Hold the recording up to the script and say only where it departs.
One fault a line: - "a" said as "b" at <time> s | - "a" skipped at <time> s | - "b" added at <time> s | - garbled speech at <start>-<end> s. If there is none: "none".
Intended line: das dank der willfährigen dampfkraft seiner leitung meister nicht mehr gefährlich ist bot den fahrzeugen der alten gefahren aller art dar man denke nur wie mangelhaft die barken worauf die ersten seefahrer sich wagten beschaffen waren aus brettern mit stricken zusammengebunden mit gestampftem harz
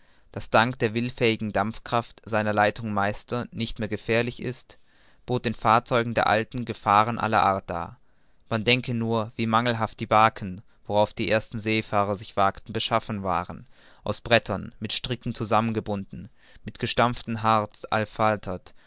none